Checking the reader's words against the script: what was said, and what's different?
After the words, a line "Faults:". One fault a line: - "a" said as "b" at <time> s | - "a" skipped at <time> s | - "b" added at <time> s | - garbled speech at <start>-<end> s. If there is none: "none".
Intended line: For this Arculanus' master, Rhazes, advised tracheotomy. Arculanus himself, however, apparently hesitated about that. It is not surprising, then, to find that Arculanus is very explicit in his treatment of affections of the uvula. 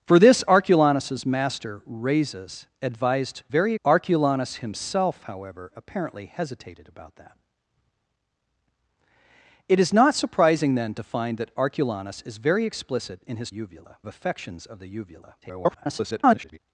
For this Arculanus' master, Rhazes, advised very. Arculanus himself, however, apparently hesitated about that. It is not surprising, then, to find that Arculanus is very explicit in his uvula of affections of the uvula. [garbled]
Faults:
- "tracheotomy" said as "very" at 3.5 s
- "treatment" said as "uvula" at 13.5 s
- garbled speech at 15.4-16.6 s